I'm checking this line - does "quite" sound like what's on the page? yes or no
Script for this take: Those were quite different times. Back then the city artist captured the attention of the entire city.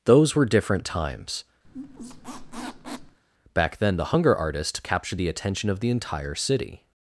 no